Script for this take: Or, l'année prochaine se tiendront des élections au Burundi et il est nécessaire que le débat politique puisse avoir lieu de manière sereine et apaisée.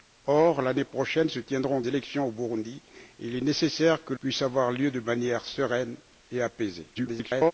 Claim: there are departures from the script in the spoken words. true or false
true